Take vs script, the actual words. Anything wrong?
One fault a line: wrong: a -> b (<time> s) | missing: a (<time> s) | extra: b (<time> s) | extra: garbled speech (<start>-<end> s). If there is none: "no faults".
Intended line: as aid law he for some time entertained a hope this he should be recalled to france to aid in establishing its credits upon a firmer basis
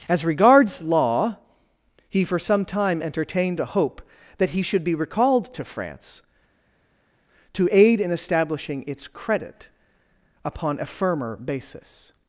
wrong: aid -> regards (0.2 s)
wrong: this -> that (4.4 s)
wrong: credits -> credit (9.1 s)